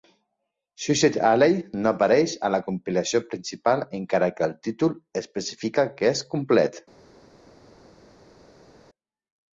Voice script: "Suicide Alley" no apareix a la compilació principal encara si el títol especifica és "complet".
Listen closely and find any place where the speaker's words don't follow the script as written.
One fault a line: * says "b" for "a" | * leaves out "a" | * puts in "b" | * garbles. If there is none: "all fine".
* says "que" for "si"
* puts in "que"